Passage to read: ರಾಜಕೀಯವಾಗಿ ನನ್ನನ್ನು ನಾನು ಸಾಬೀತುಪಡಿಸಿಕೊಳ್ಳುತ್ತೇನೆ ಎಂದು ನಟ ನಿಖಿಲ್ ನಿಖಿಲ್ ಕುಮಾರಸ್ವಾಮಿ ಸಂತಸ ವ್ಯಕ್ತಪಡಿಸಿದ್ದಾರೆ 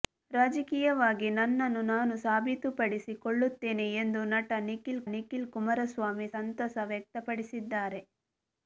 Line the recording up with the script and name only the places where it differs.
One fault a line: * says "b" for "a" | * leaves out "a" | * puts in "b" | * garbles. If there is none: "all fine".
all fine